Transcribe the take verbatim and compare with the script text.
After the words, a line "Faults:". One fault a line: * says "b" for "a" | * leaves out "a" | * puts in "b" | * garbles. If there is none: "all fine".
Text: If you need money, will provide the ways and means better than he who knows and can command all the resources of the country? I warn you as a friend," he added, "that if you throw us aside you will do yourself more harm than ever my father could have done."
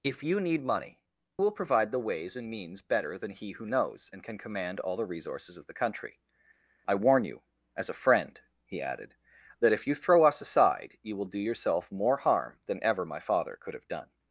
If you need money, will provide the ways and means better than he who knows and can command all the resources of the country? I warn you as a friend," he added, "that if you throw us aside you will do yourself more harm than ever my father could have done."
Faults:
all fine